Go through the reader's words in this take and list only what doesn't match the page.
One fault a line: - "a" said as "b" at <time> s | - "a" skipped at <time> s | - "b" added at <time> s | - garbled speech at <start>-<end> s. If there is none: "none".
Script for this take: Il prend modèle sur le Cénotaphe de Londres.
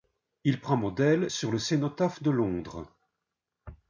none